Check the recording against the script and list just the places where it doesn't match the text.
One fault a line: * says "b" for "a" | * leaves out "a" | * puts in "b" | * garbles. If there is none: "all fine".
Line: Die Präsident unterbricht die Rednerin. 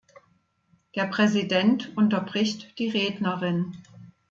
* says "Der" for "Die"